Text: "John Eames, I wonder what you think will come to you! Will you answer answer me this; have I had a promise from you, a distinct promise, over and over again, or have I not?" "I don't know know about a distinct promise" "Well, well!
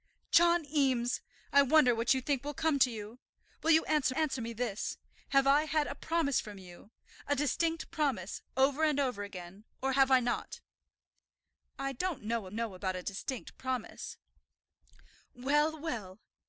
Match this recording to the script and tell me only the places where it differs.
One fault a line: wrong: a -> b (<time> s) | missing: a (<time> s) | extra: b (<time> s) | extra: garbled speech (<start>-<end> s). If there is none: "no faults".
no faults